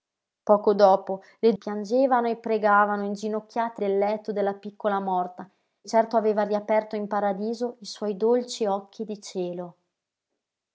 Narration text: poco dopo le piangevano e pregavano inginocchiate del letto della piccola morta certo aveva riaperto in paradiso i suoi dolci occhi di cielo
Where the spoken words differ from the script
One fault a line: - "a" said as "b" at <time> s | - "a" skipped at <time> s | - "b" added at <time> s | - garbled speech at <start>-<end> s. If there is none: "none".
none